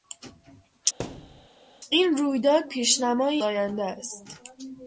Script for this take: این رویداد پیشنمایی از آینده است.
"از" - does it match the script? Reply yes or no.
no